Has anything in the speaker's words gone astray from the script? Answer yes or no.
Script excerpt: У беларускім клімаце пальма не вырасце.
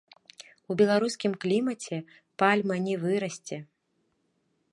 no